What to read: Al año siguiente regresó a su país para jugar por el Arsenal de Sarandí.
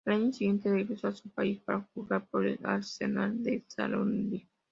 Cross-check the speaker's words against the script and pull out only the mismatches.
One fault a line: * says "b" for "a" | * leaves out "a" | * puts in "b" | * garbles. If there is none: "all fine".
all fine